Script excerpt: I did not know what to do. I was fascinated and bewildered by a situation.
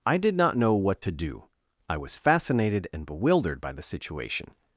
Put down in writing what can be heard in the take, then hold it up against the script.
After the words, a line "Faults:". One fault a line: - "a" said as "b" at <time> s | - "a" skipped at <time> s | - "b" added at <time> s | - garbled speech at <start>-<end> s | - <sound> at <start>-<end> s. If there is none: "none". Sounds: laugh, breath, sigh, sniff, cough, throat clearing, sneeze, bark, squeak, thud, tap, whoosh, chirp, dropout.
I did not know what to do. I was fascinated and bewildered by the situation.
Faults:
- "a" said as "the" at 3.7 s